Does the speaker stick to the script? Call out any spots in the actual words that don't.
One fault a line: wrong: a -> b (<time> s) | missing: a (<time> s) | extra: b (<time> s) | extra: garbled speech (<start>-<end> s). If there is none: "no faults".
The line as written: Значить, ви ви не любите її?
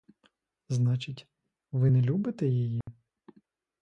missing: ви (1.9 s)